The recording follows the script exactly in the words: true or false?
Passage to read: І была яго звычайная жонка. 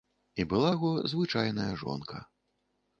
true